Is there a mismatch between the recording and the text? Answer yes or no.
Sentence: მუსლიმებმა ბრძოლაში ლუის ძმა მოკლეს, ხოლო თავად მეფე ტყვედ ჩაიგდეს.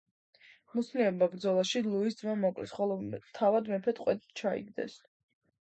no